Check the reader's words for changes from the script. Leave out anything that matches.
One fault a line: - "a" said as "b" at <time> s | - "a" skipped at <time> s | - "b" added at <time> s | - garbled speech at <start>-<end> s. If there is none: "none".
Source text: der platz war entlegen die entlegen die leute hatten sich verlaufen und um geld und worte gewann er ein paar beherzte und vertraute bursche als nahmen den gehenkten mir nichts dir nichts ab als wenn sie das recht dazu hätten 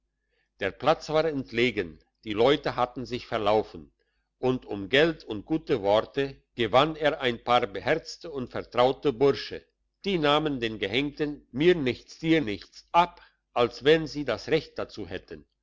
- "entlegen die" skipped at 2.3 s
- "gute" added at 5.4 s
- "als" said as "die" at 10.0 s